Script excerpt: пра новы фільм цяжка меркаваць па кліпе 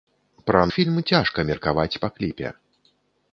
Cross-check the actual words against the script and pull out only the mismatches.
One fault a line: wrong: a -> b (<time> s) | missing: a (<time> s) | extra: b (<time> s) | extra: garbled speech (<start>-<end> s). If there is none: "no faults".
missing: новы (0.6 s)